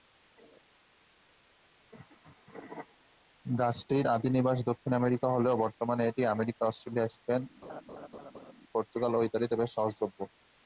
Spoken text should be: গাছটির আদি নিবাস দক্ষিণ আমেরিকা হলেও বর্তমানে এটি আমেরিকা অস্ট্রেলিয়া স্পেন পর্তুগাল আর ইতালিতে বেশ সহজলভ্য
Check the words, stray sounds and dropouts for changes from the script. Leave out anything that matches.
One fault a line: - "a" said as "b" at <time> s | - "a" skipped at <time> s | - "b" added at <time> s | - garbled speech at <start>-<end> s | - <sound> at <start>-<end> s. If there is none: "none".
- laugh at 7.6-8.5 s
- "আর" said as "ও" at 9.1 s